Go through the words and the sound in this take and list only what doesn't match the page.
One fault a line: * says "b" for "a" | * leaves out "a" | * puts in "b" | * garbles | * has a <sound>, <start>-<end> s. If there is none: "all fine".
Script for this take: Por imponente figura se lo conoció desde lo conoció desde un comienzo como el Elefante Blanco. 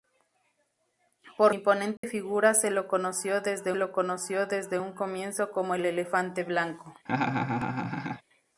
* has a dropout, 2.0-2.0 s
* has a laugh, 7.1-8.2 s